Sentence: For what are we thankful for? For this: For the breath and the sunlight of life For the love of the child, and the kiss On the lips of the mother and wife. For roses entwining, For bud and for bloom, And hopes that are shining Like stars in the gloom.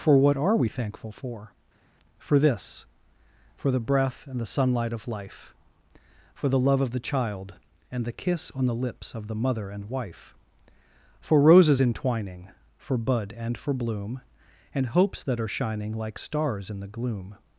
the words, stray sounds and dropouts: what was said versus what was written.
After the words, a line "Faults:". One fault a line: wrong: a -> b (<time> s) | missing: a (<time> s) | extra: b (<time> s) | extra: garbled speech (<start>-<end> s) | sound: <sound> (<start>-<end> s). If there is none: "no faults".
For what are we thankful for? For this: For the breath and the sunlight of life For the love of the child, and the kiss On the lips of the mother and wife. For roses entwining, For bud and for bloom, And hopes that are shining Like stars in the gloom.
Faults:
no faults